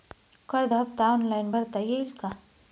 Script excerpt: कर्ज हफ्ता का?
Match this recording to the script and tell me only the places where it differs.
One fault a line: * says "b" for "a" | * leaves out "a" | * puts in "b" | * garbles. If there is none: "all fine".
* puts in "ऑनलाईन भरता येईल"